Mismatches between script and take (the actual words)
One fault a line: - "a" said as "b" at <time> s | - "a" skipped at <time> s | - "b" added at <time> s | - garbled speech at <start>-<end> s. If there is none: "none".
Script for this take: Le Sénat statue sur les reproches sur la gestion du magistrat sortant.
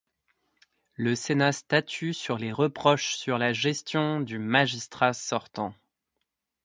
none